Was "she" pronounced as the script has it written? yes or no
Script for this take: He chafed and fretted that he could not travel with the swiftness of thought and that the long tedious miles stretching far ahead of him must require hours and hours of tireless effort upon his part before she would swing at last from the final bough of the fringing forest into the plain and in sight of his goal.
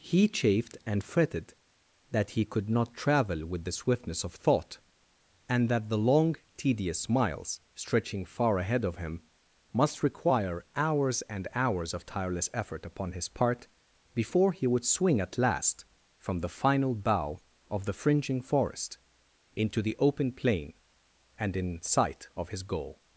no